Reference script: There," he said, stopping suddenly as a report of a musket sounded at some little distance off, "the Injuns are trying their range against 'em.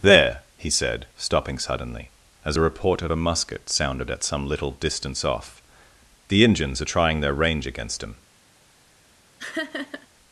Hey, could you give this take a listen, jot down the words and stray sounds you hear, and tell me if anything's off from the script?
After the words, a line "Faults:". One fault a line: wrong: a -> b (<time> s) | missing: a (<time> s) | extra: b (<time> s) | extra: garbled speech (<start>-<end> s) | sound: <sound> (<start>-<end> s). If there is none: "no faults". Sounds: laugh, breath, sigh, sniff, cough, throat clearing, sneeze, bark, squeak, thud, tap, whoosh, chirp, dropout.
There," he said, stopping suddenly as a report of a musket sounded at some little distance off, "the Injuns are trying their range against 'him.
Faults:
wrong: em -> him (8.0 s)
sound: laugh (9.4-10.1 s)